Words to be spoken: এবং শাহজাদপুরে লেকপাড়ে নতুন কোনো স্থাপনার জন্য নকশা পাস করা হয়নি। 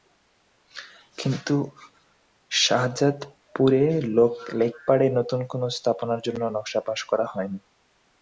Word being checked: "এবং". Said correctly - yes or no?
no